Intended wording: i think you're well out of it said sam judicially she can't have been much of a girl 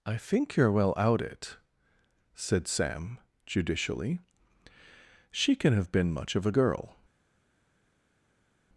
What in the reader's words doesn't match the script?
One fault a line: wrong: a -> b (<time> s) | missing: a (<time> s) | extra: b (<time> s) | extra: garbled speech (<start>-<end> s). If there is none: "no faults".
missing: of (1.2 s)
wrong: can't -> can (5.5 s)